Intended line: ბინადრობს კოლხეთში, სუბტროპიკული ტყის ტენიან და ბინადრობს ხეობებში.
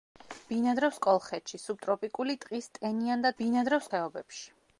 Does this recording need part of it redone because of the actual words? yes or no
no